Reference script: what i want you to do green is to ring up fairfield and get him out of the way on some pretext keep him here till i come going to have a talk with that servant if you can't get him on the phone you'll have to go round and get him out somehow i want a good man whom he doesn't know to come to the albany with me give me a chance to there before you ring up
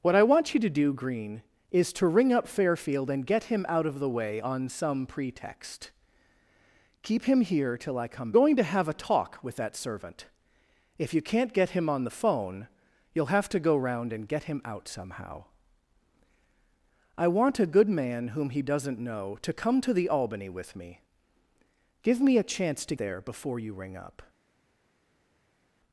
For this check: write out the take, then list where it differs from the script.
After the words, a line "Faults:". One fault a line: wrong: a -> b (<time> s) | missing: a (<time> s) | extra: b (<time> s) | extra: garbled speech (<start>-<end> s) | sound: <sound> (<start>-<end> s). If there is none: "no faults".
what i want you to do green is to ring up fairfield and get him out of the way on some pretext keep him here till i come going to have a talk with that servant if you can't get him on the phone you'll have to go round and get him out somehow i want a good man whom he doesn't know to come to the albany with me give me a chance to there before you ring up
Faults:
no faults